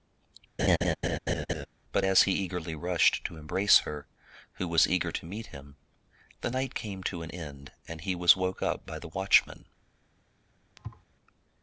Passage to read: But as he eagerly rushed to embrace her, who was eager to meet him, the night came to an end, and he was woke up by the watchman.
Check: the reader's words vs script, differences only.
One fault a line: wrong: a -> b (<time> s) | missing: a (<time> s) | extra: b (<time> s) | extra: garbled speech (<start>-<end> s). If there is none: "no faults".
no faults